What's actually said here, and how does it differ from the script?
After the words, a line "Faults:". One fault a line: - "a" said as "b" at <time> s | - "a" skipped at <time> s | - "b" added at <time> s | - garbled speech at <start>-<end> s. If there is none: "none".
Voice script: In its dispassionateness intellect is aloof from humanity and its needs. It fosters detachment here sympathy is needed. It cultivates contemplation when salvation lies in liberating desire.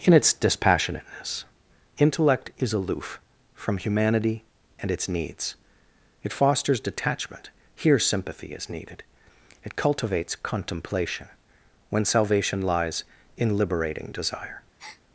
In its dispassionateness intellect is aloof from humanity and its needs. It fosters detachment here sympathy is needed. It cultivates contemplation when salvation lies in liberating desire.
Faults:
none